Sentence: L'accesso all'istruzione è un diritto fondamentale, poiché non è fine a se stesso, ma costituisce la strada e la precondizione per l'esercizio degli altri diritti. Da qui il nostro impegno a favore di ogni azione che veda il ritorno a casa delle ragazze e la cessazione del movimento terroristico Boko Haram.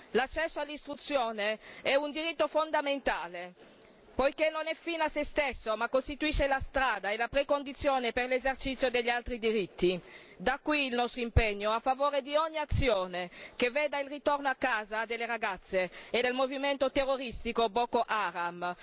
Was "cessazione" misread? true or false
true